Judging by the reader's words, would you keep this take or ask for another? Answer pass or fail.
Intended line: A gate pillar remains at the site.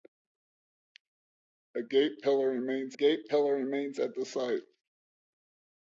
fail